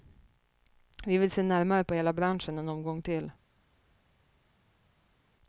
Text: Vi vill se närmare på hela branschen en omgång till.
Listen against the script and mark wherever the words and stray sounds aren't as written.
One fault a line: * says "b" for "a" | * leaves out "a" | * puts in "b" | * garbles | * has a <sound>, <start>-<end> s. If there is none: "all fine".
all fine